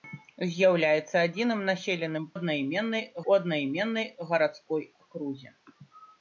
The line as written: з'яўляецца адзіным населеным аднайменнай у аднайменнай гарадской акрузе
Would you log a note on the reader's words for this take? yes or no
no